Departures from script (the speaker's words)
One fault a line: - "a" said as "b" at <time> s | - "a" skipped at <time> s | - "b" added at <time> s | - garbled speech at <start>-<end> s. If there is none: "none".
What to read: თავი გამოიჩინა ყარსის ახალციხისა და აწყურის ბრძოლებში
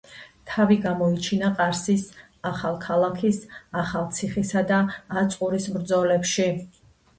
- "ახალქალაქის" added at 2.5 s